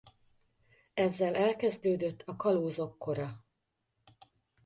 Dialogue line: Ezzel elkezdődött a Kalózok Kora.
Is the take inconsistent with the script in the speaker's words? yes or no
no